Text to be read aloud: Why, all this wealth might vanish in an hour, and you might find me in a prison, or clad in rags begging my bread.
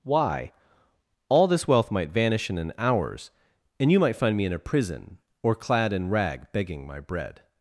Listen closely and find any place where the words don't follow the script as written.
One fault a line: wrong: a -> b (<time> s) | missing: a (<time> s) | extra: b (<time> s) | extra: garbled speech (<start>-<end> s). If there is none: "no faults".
wrong: hour -> hours (2.8 s)
wrong: rags -> rag (6.1 s)